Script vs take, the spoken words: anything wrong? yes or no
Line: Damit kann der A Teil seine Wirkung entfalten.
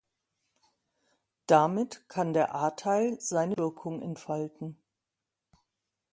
no